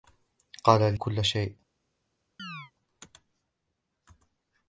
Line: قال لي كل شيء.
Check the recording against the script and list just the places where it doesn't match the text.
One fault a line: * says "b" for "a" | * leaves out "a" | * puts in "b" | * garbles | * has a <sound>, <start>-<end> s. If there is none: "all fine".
* leaves out "لي"
* has a chirp, 2.4-2.7 s